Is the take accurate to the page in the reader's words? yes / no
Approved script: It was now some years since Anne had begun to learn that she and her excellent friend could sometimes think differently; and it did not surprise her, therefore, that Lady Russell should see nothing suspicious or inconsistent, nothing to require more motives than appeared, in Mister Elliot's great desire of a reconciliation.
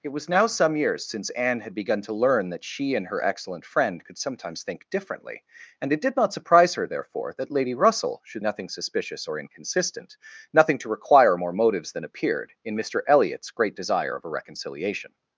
no